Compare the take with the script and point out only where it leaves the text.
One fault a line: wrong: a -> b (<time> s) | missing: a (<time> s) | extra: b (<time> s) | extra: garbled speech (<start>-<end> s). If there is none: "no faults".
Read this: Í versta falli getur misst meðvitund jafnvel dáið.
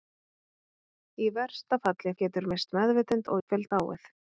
no faults